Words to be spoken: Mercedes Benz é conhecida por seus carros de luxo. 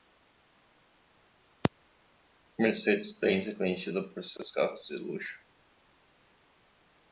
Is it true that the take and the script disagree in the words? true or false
false